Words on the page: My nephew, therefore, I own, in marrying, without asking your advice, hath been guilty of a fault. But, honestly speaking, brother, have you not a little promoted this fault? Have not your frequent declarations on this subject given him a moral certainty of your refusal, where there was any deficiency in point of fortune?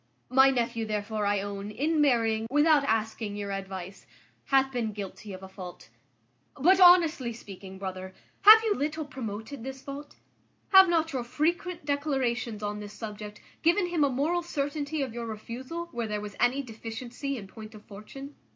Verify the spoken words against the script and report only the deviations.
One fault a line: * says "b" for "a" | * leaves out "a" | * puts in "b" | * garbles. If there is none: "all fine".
* leaves out "not a"